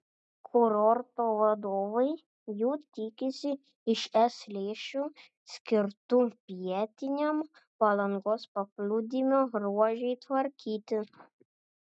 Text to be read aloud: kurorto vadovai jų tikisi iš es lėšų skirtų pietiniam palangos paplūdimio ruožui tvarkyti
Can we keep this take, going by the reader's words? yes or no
yes